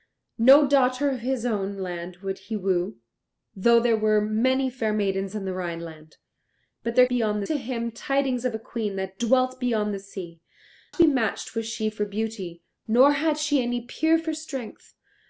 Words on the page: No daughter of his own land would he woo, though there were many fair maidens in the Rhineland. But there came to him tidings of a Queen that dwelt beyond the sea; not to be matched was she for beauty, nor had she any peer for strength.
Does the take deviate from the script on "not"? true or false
true